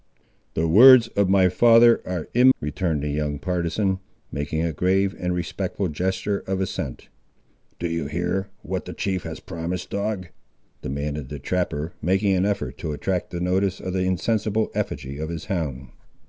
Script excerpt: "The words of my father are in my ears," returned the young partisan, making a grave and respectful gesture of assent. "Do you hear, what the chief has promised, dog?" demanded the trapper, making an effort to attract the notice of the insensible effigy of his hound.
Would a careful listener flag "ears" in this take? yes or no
yes